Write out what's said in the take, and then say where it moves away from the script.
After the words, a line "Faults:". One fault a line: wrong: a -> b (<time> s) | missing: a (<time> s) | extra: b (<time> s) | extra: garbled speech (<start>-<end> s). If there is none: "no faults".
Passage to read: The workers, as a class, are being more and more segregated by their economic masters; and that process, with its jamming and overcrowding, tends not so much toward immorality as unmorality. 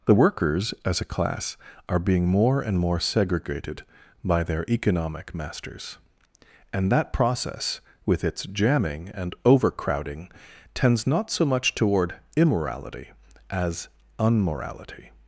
The workers, as a class, are being more and more segregated by their economic masters; and that process, with its jamming and overcrowding, tends not so much toward immorality as unmorality.
Faults:
no faults